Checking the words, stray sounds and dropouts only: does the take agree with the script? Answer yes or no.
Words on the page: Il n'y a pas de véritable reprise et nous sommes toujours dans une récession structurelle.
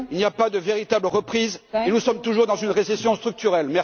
yes